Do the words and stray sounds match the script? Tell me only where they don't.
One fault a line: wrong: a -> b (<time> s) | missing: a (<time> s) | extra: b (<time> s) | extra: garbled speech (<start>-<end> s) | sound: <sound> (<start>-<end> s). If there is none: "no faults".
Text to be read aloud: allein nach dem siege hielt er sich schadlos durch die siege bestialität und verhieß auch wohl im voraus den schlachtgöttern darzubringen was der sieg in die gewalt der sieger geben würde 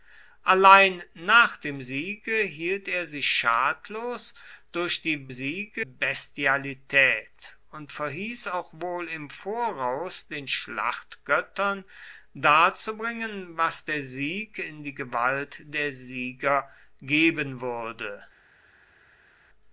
no faults